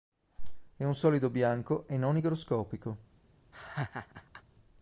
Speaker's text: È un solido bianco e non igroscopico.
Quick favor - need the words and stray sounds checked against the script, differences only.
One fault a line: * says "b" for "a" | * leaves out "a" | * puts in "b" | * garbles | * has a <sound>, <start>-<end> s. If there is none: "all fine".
* has a laugh, 3.5-4.4 s